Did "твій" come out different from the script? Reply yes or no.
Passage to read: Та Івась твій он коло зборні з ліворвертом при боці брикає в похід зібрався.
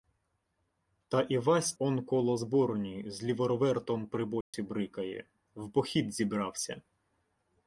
yes